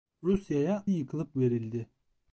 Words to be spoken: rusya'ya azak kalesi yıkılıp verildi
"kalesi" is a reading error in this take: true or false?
true